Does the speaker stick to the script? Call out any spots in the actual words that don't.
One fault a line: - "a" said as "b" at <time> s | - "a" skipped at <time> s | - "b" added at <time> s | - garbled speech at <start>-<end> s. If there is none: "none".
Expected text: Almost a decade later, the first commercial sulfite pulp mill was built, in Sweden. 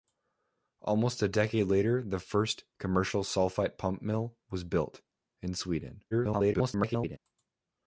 - garbled speech at 6.1-7.2 s